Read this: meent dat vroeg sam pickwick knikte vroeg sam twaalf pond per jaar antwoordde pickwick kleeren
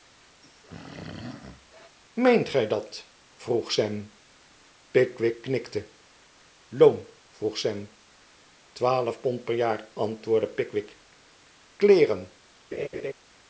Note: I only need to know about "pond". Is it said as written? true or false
true